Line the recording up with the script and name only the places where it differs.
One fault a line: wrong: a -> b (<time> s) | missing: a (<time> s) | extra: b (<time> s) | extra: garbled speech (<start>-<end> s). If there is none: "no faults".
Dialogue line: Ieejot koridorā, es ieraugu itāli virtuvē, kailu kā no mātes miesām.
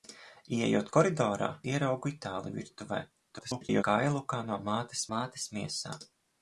missing: es (1.5 s)
extra: garbled speech (3.3-3.8 s)
extra: mātes (5.2 s)